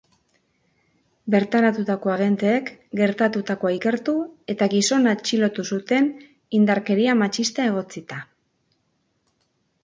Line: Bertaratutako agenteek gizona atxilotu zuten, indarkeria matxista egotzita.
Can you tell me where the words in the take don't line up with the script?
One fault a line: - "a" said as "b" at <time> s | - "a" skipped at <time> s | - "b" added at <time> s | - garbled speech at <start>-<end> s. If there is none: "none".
- "gertatutakoa ikertu eta" added at 3.0 s